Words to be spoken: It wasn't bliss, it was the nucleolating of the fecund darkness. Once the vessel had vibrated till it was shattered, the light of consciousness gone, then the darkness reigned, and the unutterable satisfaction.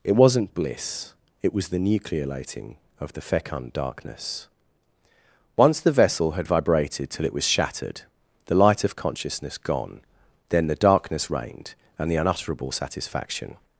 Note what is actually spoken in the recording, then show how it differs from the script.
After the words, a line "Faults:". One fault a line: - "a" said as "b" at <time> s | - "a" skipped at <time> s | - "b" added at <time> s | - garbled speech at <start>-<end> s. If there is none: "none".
It wasn't bliss, it was the nucleolating of the fecund darkness. Once the vessel had vibrated till it was shattered, the light of consciousness gone, then the darkness reigned, and the unutterable satisfaction.
Faults:
none